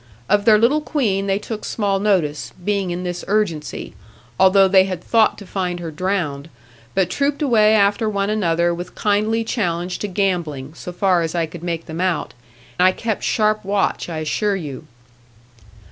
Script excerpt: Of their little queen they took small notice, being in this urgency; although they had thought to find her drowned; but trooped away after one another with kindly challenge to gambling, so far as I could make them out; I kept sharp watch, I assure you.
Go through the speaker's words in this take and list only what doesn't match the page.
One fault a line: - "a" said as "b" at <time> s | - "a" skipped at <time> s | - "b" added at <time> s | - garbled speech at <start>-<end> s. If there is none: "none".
none